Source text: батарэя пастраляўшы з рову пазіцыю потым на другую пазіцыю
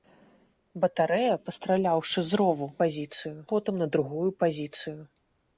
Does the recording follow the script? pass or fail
pass